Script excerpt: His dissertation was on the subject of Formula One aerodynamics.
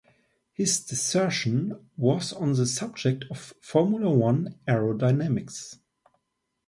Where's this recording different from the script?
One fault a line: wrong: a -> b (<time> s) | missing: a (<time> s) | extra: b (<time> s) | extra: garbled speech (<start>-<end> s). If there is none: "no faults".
no faults